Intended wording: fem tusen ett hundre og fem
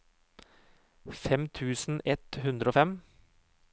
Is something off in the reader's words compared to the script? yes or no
no